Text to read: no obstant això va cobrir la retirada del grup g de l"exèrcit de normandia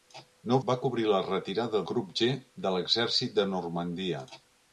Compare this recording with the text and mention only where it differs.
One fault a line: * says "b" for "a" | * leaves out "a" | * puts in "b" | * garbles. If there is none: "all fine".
* leaves out "obstant això"
* leaves out "del"